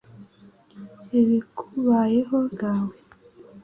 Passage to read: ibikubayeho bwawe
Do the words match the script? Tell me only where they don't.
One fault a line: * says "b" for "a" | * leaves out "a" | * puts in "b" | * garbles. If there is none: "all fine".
all fine